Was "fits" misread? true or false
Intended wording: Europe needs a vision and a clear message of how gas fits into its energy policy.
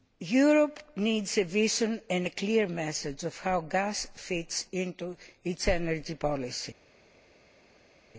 false